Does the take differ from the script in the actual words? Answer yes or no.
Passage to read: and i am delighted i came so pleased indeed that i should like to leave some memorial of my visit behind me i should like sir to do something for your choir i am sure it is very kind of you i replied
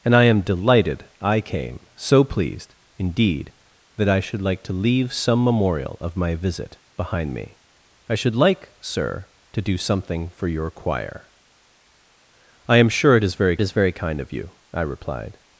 yes